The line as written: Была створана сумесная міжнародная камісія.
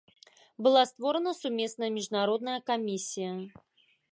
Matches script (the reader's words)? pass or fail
pass